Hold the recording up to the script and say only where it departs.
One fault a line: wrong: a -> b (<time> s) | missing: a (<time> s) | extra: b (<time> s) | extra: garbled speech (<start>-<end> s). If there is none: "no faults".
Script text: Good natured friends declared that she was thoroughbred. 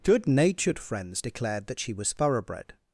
no faults